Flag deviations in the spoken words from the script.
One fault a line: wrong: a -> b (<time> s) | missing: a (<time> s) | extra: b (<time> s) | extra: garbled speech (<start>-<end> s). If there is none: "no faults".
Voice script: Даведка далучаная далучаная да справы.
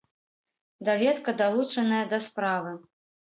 missing: далучаная (2.0 s)